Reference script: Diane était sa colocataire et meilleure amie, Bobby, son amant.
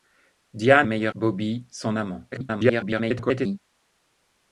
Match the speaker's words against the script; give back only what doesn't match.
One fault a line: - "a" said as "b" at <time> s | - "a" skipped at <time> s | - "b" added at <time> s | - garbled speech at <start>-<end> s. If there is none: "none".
- "était sa colocataire" skipped at 0.9 s
- "amie" skipped at 1.1 s
- garbled speech at 2.3-3.6 s